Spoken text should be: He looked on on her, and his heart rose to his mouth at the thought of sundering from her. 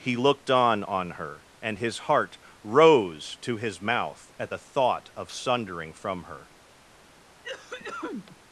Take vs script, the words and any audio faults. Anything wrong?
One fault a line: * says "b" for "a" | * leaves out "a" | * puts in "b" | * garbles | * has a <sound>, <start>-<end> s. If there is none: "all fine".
* has a cough, 7.4-8.4 s